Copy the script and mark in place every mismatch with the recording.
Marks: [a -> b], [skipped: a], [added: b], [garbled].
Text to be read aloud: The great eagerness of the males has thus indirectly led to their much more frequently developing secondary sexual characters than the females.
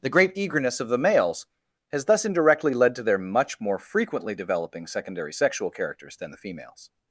The great eagerness of the males has thus indirectly led to their much more frequently developing secondary sexual characters than the females.